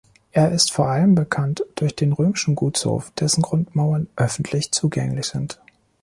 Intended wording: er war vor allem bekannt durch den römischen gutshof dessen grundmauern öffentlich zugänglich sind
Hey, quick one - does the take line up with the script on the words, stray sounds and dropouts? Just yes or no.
no